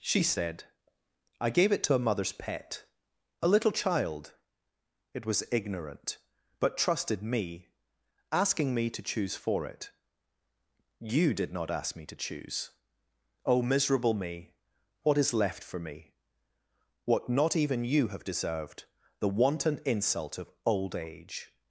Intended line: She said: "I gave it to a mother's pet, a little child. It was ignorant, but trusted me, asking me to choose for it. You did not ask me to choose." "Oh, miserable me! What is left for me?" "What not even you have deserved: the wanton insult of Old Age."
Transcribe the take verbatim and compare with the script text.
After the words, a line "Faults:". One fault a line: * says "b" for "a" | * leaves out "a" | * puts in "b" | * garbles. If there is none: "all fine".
She said: "I gave it to a mother's pet, a little child. It was ignorant, but trusted me, asking me to choose for it. You did not ask me to choose." "Oh, miserable me! What is left for me?" "What not even you have deserved: the wanton insult of Old Age."
Faults:
all fine